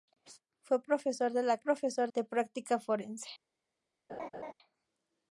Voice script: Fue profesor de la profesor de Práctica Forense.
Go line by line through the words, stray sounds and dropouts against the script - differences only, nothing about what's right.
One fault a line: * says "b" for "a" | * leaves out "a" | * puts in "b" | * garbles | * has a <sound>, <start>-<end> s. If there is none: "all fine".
* has a laugh, 4.1-4.5 s